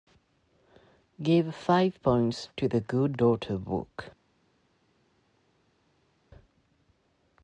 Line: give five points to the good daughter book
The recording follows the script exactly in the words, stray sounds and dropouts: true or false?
true